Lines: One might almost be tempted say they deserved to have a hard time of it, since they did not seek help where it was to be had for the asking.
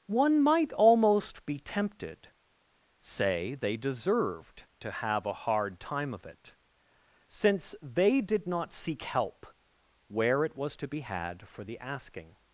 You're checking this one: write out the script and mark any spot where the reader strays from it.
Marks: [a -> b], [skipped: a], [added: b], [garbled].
One might almost be tempted say they deserved to have a hard time of it, since they did not seek help where it was to be had for the asking.